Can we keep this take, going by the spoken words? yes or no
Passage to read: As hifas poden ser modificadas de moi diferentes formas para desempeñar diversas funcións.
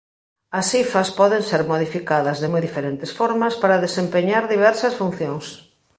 yes